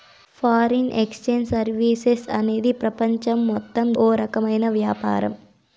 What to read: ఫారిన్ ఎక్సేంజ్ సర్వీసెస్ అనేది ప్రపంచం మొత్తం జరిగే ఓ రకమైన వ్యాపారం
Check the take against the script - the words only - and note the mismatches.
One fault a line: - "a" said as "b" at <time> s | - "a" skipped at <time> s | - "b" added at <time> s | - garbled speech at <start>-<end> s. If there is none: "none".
- "జరిగే" skipped at 3.9 s